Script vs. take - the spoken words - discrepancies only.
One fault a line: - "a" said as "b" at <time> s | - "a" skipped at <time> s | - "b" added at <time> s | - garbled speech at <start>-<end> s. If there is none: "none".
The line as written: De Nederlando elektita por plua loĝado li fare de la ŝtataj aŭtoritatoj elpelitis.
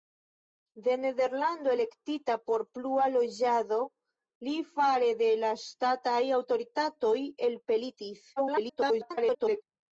- garbled speech at 8.4-9.6 s